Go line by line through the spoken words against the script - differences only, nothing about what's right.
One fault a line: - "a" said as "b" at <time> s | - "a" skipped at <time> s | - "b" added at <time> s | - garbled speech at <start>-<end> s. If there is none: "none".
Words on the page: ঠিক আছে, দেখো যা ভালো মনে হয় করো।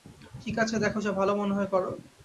none